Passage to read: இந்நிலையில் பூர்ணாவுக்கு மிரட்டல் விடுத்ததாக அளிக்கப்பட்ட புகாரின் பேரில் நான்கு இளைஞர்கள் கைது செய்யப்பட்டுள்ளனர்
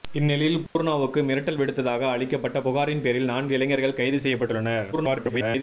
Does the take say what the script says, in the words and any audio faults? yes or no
no